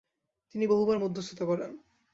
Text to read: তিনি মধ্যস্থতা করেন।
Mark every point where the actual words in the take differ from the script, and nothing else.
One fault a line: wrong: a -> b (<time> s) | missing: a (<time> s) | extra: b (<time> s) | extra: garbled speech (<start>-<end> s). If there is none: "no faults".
extra: বহুবার (0.6 s)